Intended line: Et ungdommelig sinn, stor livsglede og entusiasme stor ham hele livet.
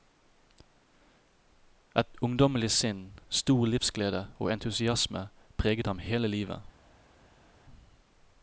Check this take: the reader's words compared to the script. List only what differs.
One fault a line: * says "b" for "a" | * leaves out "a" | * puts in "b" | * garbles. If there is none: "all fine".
* says "preget" for "stor"